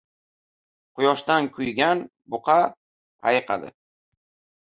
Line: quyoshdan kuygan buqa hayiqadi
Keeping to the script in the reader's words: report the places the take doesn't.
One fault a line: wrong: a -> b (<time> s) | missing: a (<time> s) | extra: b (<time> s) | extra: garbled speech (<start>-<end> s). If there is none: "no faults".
no faults